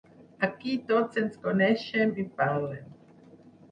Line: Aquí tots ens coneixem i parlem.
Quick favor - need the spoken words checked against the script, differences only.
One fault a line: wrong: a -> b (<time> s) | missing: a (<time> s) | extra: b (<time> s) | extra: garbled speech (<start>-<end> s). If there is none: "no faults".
no faults